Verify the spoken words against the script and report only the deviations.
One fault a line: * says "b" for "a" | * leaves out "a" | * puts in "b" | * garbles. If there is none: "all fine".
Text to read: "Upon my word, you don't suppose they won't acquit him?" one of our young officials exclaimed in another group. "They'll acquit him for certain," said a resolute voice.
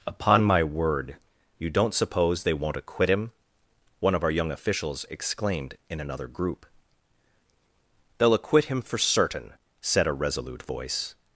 all fine